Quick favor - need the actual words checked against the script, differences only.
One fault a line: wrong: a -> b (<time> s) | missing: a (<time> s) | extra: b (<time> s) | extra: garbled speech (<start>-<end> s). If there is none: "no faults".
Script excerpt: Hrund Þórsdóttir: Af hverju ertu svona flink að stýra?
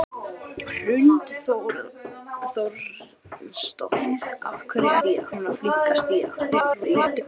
wrong: ertu -> stýra (5.0 s)
extra: garbled speech (6.4-7.2 s)